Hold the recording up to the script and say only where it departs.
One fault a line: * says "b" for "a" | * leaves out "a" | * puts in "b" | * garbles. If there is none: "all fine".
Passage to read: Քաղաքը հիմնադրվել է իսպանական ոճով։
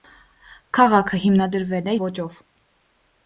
* leaves out "իսպանական"